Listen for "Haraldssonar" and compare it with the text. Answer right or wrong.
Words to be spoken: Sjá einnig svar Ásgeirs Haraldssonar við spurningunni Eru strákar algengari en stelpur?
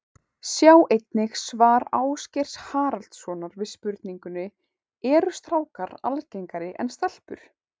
right